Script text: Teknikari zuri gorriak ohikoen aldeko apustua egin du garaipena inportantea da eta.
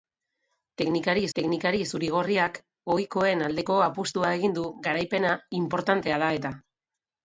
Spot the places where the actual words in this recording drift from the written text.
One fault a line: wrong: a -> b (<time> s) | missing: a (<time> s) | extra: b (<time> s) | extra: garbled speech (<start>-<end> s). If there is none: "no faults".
extra: teknikari (1.4 s)